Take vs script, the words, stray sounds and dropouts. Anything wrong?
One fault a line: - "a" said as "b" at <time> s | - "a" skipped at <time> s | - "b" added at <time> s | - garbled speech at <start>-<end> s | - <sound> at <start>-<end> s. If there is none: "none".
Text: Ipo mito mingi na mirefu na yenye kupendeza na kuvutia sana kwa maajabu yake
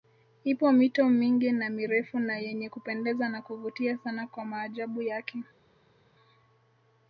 none